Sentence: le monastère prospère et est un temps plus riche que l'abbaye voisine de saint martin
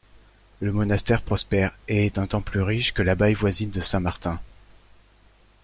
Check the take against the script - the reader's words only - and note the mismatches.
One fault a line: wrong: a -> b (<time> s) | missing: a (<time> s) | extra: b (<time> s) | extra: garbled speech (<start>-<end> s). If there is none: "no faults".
no faults